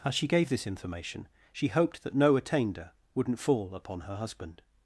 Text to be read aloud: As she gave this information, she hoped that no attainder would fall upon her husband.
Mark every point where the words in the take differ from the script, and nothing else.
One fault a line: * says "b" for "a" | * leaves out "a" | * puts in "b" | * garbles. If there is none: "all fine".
* says "wouldn't" for "would"